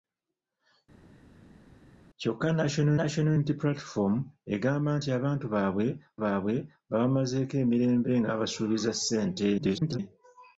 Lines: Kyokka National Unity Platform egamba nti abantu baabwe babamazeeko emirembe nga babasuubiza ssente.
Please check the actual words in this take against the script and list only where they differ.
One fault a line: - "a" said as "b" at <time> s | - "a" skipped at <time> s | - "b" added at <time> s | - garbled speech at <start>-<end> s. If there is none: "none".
- "National" added at 3.0 s
- "baabwe" added at 6.2 s
- garbled speech at 9.6-10.0 s